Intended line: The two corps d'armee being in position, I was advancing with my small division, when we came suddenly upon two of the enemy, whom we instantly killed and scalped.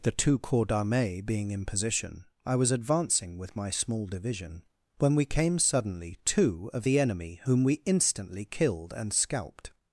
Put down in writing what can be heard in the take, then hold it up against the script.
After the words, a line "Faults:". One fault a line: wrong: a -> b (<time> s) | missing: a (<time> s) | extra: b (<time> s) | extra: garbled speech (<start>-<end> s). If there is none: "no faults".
The two corps d'armee being in position, I was advancing with my small division, when we came suddenly two of the enemy, whom we instantly killed and scalped.
Faults:
missing: upon (6.2 s)